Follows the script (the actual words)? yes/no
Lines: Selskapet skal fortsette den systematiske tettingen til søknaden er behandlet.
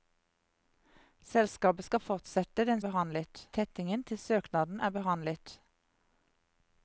no